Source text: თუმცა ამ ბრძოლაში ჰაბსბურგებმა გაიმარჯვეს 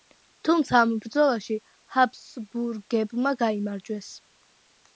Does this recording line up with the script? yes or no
yes